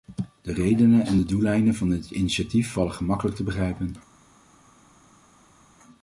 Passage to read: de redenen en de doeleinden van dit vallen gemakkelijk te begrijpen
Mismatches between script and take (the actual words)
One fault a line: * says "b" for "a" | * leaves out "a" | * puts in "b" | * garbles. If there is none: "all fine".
* puts in "initiatief"